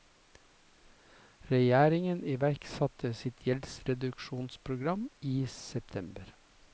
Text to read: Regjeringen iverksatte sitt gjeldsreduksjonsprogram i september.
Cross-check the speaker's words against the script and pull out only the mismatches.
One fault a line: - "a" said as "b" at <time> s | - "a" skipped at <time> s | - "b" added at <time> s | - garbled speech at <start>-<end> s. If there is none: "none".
none